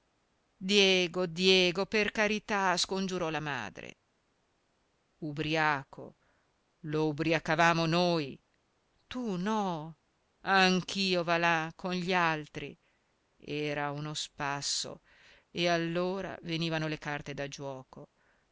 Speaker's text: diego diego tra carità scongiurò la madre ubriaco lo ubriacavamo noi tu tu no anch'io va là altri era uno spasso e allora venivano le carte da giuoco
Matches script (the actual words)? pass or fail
fail